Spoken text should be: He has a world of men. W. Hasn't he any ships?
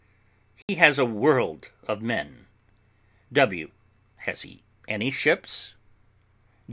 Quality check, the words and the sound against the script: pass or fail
fail